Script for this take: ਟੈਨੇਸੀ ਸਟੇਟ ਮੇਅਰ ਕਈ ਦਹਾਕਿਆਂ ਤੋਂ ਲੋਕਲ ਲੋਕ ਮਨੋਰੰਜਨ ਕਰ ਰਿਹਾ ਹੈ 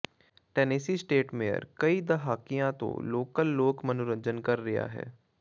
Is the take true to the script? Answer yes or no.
yes